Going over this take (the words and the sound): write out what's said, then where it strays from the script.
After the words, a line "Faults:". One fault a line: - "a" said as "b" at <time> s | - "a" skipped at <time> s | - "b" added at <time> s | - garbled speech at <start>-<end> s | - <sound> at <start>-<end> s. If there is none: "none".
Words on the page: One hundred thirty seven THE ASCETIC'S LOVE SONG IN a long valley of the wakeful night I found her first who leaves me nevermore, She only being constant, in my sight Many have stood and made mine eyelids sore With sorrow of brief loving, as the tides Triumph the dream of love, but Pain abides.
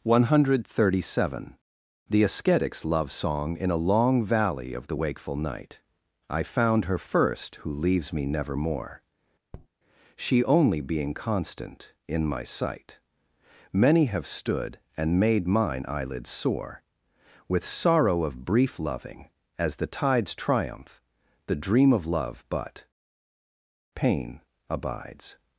One hundred thirty seven THE ASCETIC'S LOVE SONG IN a long valley of the wakeful night I found her first who leaves me nevermore, She only being constant, in my sight Many have stood and made mine eyelids sore With sorrow of brief loving, as the tides Triumph the dream of love, but Pain abides.
Faults:
- tap at 9.5-9.7 s